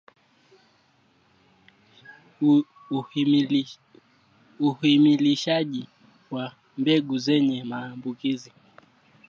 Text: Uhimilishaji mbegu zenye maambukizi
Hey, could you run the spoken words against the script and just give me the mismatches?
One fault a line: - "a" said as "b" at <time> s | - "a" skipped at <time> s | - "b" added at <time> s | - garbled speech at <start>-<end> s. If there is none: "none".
- "wa" added at 6.3 s